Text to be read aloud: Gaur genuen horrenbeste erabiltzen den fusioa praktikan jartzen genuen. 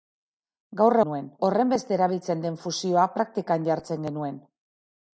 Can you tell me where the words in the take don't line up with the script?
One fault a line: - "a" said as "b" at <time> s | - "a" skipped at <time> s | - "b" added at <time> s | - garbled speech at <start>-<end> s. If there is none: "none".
none